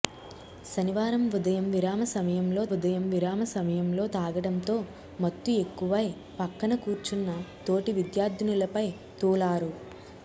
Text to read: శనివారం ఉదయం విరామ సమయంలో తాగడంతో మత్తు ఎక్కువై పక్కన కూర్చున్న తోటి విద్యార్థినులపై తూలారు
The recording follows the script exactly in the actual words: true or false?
false